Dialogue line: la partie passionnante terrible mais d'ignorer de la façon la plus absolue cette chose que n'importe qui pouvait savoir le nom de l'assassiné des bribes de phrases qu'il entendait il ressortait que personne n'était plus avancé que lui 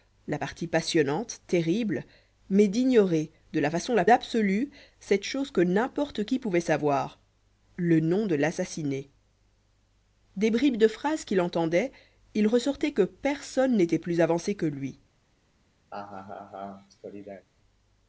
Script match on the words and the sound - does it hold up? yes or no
no